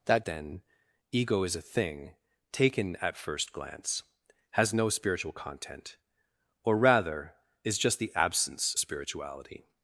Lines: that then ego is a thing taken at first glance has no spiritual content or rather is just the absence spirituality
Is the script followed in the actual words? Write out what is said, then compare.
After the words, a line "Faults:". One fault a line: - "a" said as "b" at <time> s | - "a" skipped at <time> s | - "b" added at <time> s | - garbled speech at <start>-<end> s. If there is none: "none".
that then ego is a thing taken at first glance has no spiritual content or rather is just the absence spirituality
Faults:
none